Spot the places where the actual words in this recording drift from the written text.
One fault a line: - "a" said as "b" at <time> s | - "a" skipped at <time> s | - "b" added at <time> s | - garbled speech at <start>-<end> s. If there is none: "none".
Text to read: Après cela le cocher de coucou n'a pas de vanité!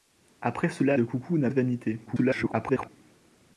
- "le cocher" skipped at 1.0 s
- "pas" skipped at 1.5 s
- garbled speech at 2.1-2.9 s